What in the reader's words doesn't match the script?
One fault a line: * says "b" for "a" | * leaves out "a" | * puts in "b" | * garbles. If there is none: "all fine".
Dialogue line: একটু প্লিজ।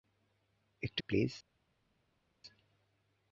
all fine